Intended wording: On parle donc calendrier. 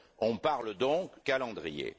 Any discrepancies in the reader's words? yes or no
no